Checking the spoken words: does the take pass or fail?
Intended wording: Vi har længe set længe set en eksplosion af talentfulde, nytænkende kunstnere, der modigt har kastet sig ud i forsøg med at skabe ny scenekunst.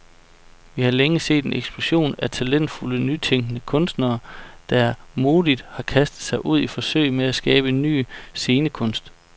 fail